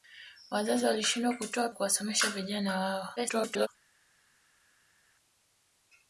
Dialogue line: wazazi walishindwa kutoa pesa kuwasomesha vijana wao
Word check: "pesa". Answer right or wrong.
wrong